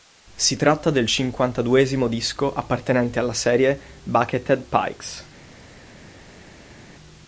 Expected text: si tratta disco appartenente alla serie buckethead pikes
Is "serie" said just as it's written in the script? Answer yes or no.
yes